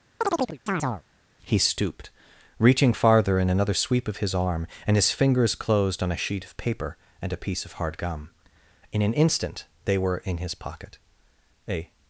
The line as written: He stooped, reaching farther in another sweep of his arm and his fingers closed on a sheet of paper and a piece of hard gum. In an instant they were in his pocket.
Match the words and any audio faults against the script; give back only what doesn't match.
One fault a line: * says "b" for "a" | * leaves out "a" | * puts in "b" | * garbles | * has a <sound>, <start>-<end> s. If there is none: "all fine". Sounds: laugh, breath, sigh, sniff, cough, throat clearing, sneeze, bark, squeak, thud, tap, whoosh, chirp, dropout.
* has a chirp, 0.2-1.0 s
* puts in "A"